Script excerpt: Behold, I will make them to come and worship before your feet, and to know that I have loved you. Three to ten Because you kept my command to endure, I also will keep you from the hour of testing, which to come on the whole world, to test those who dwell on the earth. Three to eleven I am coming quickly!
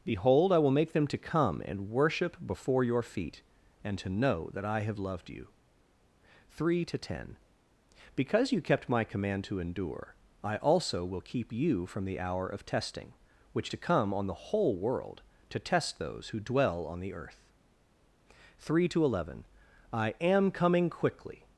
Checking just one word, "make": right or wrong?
right